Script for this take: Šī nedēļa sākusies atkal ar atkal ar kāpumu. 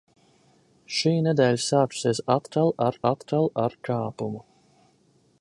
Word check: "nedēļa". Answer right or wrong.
right